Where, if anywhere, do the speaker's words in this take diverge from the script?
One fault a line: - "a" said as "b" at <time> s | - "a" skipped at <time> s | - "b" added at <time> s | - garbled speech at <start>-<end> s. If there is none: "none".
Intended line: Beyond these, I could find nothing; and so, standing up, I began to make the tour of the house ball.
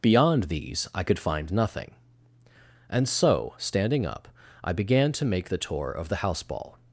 none